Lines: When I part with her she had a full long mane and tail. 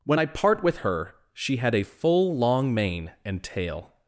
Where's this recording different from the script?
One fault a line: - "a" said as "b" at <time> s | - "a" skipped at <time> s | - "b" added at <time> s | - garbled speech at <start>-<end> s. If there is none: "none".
none